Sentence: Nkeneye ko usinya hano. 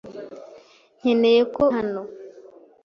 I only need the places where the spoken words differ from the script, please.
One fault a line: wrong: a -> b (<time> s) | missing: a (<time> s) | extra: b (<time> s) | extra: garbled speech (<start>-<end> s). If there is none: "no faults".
missing: usinya (1.6 s)